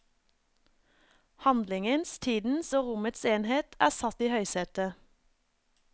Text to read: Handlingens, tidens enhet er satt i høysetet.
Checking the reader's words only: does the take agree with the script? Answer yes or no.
no